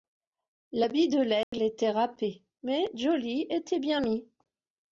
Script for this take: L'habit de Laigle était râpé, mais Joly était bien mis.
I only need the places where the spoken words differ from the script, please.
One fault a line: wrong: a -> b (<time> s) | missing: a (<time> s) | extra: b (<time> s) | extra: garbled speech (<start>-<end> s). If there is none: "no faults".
no faults